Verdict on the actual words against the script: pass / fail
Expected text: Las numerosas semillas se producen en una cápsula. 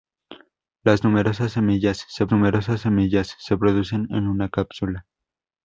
fail